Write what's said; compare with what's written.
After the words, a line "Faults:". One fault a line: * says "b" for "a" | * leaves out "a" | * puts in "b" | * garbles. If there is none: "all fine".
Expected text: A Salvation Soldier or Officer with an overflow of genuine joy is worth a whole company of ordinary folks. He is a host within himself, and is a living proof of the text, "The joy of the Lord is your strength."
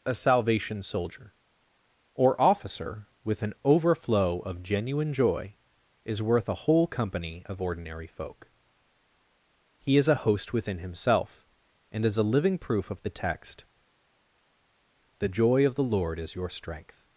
A Salvation Soldier or Officer with an overflow of genuine joy is worth a whole company of ordinary folk. He is a host within himself, and is a living proof of the text, "The joy of the Lord is your strength."
Faults:
* says "folk" for "folks"